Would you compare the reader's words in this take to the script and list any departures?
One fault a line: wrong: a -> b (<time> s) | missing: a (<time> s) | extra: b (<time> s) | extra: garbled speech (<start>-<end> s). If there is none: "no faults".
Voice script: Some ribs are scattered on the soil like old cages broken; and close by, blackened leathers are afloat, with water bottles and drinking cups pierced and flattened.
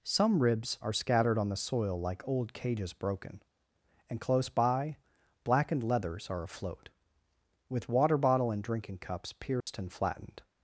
wrong: bottles -> bottle (8.2 s)